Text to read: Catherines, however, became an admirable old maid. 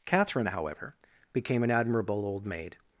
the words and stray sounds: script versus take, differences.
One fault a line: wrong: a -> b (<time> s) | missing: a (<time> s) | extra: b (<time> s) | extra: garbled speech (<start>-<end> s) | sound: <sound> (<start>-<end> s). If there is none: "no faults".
wrong: Catherines -> Catherine (0.0 s)